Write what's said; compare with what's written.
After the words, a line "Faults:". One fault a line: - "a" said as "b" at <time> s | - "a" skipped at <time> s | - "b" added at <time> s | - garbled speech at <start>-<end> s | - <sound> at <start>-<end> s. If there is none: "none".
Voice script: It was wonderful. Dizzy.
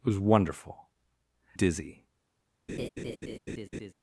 It was wonderful. Dizzy.
Faults:
- laugh at 2.7-3.9 s